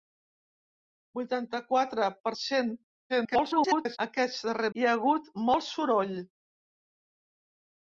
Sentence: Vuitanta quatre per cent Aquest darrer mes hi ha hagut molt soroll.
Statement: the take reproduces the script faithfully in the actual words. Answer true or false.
false